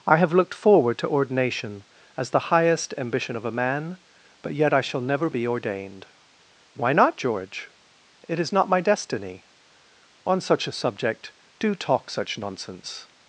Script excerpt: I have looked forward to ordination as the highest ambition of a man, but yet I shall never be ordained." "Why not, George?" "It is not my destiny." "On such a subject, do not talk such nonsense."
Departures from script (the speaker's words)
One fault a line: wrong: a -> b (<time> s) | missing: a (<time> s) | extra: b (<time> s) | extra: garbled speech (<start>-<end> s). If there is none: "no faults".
missing: not (11.8 s)